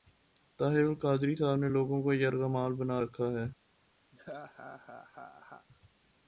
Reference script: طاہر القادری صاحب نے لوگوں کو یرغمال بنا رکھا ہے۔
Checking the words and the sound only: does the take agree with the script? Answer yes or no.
no